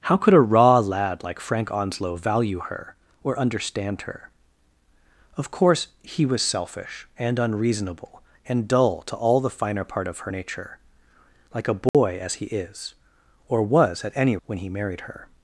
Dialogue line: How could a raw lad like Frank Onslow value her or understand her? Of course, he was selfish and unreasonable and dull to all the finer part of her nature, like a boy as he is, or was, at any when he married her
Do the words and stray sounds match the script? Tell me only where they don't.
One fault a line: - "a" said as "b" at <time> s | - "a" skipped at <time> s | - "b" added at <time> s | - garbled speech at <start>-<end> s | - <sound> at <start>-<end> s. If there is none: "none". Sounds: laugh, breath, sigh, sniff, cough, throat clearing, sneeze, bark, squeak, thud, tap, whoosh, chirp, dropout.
- dropout at 11.9-11.9 s